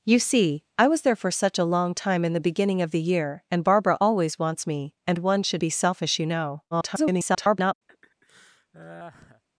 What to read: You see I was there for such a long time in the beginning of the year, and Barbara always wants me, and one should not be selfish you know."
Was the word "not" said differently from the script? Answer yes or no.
yes